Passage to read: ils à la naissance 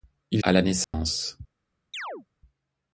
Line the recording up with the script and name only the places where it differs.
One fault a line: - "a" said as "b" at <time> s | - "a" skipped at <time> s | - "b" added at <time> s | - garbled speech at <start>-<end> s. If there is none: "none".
none